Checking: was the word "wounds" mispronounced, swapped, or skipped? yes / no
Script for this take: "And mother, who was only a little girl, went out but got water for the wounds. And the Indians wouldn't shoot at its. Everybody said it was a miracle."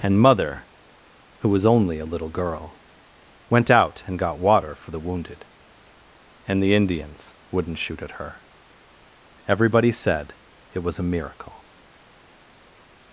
yes